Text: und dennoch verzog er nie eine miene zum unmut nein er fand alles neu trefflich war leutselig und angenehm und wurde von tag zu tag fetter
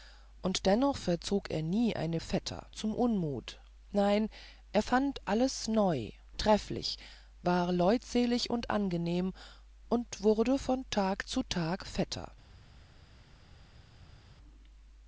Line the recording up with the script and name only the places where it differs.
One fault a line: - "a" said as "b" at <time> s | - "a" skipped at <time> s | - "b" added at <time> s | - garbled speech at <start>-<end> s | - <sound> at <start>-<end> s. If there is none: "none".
- "miene" said as "fetter" at 2.2 s